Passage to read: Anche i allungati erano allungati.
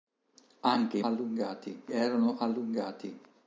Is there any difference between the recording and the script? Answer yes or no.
no